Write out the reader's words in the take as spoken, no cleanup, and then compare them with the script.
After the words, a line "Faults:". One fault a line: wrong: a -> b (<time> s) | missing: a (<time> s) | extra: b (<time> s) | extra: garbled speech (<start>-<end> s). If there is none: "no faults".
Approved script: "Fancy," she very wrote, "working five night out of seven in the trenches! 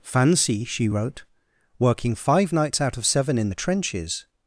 "Fancy," she wrote, "working five nights out of seven in the trenches!
Faults:
missing: very (0.9 s)
wrong: night -> nights (2.5 s)